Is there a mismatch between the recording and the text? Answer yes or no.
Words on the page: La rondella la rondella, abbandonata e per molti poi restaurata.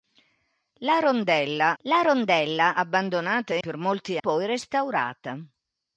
no